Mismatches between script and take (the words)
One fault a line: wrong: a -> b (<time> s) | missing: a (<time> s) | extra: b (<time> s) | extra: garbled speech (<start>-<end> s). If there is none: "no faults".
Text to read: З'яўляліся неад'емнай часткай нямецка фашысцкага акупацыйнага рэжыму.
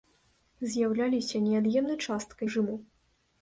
missing: нямецка фашысцкага акупацыйнага (2.5 s)